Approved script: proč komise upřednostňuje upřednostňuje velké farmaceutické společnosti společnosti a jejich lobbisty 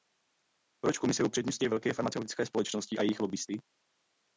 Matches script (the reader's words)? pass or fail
fail